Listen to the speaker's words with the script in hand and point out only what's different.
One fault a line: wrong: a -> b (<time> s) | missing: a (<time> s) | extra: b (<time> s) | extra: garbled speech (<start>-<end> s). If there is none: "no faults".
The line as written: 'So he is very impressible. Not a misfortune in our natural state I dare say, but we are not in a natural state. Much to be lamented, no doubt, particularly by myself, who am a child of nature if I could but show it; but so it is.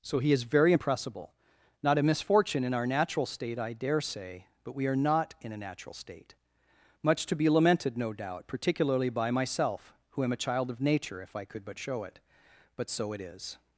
no faults